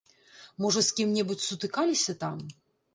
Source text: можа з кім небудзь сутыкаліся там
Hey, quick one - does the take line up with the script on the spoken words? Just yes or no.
yes